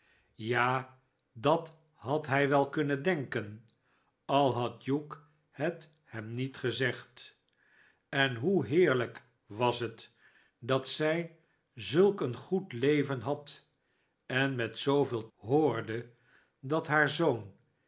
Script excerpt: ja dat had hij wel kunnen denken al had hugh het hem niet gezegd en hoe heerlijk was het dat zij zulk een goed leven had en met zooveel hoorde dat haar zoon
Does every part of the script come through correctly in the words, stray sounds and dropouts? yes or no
yes